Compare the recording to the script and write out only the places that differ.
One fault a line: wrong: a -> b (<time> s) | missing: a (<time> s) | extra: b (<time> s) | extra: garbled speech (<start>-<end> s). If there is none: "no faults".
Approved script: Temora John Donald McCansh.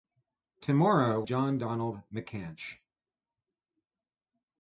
no faults